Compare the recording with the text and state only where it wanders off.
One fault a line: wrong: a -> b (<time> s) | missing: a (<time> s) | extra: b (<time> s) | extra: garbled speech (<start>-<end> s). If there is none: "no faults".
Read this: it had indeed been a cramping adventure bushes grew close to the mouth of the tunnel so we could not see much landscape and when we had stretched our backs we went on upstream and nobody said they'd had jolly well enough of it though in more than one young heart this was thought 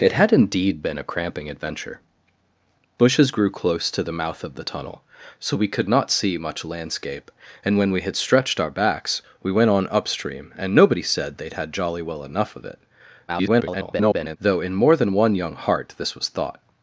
extra: garbled speech (13.3-14.4 s)